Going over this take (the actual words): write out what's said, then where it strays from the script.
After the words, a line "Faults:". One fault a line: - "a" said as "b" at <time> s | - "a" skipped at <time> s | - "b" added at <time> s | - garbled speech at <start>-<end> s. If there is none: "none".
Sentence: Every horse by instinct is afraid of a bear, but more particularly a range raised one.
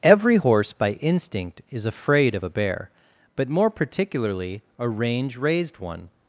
Every horse by instinct is afraid of a bear, but more particularly a range raised one.
Faults:
none